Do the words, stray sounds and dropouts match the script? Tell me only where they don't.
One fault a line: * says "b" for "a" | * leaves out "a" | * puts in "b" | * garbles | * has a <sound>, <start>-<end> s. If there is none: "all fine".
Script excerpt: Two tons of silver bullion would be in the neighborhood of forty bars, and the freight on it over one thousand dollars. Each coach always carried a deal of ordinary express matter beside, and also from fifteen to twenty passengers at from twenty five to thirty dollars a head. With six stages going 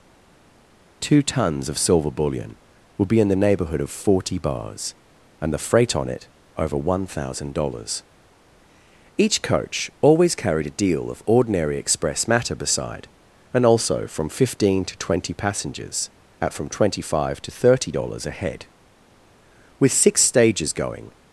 all fine